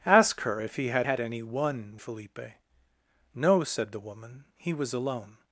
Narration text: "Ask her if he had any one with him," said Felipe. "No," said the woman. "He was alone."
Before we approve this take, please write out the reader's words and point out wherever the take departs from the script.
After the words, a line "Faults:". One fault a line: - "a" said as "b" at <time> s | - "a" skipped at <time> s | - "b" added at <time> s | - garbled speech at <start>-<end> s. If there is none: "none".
"Ask her if he had had any one Felipe. "No," said the woman. "He was alone."
Faults:
- "had" added at 1.0 s
- "with him said" skipped at 2.0 s